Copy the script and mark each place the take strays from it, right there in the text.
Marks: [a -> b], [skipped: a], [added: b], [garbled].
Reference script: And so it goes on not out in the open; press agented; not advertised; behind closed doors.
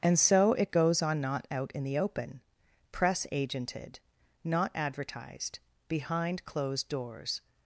And so it goes on not out in the open; press agented; not advertised; behind closed doors.